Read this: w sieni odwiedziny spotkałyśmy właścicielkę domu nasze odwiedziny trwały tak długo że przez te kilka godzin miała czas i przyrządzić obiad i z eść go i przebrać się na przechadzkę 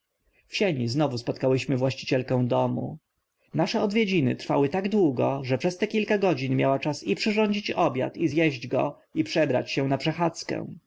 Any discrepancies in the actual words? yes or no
yes